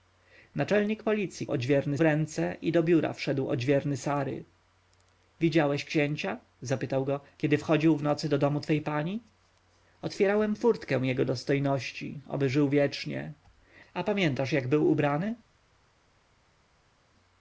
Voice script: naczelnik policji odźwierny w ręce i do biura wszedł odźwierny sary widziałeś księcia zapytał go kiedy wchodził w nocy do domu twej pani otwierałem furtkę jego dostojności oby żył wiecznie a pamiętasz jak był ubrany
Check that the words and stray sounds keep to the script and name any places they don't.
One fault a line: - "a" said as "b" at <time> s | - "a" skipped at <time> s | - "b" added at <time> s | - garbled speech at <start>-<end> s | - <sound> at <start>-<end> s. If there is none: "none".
none